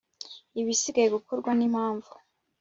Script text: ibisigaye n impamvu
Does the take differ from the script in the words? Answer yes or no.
yes